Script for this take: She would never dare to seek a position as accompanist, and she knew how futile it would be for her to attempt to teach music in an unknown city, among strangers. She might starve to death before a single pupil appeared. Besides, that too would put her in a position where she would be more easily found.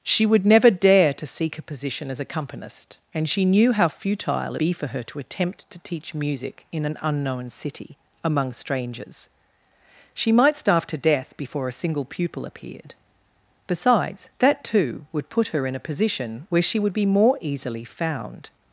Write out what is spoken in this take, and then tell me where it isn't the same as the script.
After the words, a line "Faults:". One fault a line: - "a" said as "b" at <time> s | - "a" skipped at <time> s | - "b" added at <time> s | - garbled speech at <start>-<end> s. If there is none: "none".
She would never dare to seek a position as accompanist, and she knew how futile be for her to attempt to teach music in an unknown city, among strangers. She might starve to death before a single pupil appeared. Besides, that too would put her in a position where she would be more easily found.
Faults:
- "it would" skipped at 4.5 s